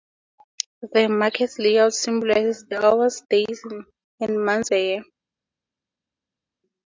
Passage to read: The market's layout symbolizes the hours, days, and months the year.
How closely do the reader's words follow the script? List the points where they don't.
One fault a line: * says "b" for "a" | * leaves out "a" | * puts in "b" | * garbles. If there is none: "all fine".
all fine